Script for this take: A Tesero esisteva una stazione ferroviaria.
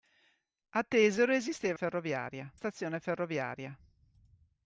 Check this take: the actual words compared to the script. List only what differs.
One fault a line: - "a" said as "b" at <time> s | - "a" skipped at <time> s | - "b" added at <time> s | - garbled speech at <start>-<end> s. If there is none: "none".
- "una" said as "ferroviaria" at 1.7 s